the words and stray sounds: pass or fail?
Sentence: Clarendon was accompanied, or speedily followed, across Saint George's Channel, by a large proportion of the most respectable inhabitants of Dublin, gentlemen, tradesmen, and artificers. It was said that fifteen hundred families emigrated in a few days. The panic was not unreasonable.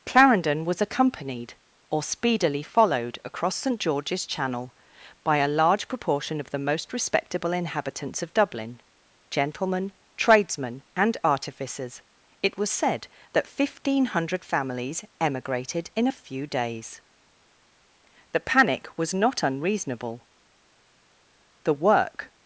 fail